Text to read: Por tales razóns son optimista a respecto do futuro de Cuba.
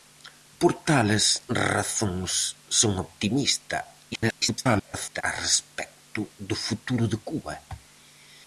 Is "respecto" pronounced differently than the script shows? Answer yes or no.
no